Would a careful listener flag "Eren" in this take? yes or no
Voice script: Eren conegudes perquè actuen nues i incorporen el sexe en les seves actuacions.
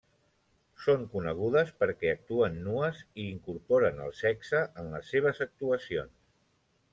yes